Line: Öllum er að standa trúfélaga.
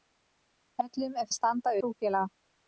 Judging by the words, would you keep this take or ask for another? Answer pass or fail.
pass